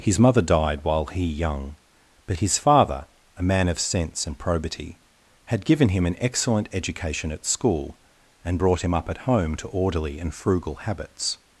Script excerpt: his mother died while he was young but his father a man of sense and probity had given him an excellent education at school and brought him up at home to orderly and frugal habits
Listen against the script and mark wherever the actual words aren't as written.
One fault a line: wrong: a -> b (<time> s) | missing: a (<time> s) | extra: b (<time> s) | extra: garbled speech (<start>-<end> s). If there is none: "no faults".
missing: was (1.2 s)